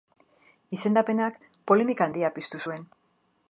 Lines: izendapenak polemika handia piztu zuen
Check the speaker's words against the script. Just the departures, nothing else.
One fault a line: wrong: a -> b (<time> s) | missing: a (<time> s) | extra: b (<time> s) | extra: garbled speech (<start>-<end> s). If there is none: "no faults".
no faults